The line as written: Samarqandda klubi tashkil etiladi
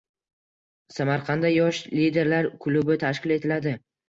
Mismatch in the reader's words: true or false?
true